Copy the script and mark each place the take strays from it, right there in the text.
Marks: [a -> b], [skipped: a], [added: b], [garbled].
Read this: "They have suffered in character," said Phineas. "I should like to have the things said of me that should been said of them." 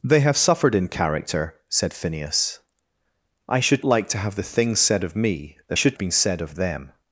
"They have suffered in character," said Phineas. "I should like to have the things said of me that should been said of them."